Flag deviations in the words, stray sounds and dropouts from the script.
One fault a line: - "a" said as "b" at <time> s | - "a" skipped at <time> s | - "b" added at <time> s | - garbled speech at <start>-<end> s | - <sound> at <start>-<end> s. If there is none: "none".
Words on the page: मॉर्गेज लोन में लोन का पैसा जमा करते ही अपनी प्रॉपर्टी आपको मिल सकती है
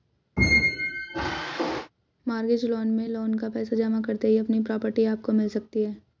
- squeak at 0.4-1.9 s